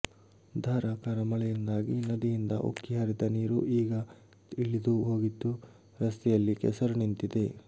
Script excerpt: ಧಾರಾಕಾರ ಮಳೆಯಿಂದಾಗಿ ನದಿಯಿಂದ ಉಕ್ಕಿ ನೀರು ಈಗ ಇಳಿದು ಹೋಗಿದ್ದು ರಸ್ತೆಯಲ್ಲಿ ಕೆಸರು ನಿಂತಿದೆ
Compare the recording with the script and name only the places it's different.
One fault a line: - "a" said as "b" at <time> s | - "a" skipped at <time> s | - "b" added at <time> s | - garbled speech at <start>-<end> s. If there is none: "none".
- "ಹರಿದ" added at 3.0 s